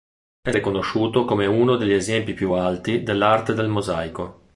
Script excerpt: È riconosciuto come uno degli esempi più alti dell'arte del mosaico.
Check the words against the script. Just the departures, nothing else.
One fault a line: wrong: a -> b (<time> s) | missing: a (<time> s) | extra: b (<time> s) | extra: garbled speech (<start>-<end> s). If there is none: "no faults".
no faults